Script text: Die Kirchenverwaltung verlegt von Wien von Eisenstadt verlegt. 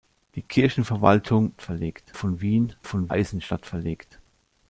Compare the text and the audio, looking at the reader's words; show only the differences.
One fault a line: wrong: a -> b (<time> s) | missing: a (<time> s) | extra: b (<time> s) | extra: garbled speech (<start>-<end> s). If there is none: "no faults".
no faults